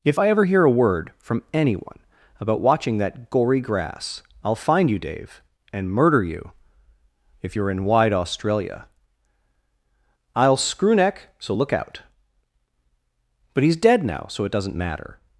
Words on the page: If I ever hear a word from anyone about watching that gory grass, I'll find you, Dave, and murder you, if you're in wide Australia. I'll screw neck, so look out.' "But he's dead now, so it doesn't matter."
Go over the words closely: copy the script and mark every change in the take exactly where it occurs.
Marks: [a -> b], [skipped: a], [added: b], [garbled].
If I ever hear a word from anyone about watching that gory grass, I'll find you, Dave, and murder you, if you're in wide Australia. I'll screw neck, so look out.' "But he's dead now, so it doesn't matter."